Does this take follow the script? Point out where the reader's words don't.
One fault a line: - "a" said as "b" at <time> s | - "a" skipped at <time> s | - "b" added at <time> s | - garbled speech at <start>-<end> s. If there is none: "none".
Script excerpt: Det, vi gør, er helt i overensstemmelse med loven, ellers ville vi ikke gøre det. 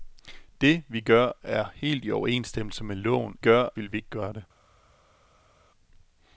- "ellers" said as "gør" at 3.4 s